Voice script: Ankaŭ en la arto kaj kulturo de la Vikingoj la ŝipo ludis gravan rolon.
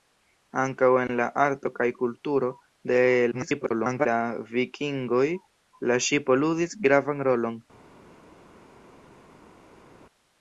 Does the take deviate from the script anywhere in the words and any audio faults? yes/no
yes